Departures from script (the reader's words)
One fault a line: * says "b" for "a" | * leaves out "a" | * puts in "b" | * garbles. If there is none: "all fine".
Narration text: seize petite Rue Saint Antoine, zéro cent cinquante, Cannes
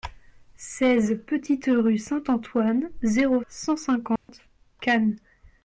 all fine